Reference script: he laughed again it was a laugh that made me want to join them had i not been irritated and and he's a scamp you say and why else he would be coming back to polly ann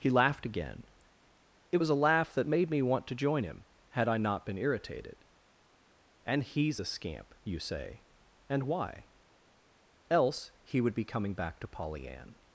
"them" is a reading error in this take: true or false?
true